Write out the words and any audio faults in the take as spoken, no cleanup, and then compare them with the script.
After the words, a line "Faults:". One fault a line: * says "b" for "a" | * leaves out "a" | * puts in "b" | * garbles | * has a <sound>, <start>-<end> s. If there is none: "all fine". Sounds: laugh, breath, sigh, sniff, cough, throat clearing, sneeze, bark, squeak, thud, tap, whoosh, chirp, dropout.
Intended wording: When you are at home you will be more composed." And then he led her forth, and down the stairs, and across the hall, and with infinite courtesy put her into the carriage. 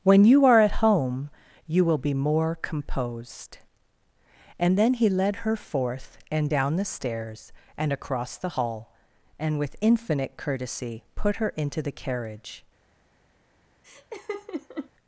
When you are at home you will be more composed." And then he led her forth, and down the stairs, and across the hall, and with infinite courtesy put her into the carriage.
Faults:
* has a laugh, 13.8-14.9 s